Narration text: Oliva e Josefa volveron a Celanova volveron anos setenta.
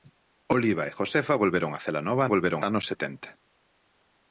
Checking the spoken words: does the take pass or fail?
pass